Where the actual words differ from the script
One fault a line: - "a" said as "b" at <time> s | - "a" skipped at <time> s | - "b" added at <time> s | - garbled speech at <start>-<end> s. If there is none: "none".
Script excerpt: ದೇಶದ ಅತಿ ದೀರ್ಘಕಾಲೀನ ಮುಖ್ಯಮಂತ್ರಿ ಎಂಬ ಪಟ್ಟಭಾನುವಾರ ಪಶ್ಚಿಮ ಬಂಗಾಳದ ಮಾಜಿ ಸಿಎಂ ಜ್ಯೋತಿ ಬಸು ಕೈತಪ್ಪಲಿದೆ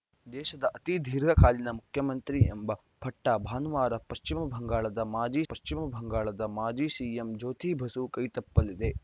- "ಪಶ್ಚಿಮ ಬಂಗಾಳದ ಮಾಜಿ" added at 5.5 s